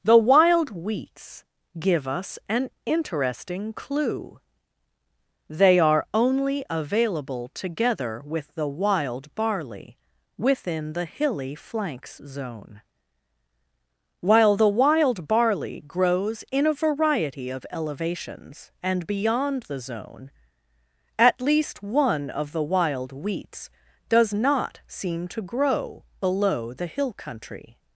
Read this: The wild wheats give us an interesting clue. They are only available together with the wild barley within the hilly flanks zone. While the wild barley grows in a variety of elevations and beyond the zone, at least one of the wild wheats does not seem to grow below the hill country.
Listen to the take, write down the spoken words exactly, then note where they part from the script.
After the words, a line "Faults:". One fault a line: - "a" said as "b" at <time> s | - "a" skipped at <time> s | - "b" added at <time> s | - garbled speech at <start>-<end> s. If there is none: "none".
The wild wheats give us an interesting clue. They are only available together with the wild barley within the hilly flanks zone. While the wild barley grows in a variety of elevations and beyond the zone, at least one of the wild wheats does not seem to grow below the hill country.
Faults:
none